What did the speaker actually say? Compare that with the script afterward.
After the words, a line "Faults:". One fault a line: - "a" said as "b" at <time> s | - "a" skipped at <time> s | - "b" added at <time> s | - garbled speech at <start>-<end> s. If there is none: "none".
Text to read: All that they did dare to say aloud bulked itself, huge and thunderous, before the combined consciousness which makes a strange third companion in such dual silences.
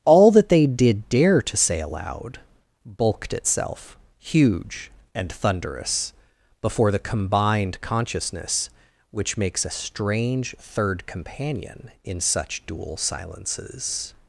All that they did dare to say aloud bulked itself, huge and thunderous, before the combined consciousness which makes a strange third companion in such dual silences.
Faults:
none